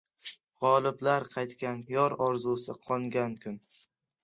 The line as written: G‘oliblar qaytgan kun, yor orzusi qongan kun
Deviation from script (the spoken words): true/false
true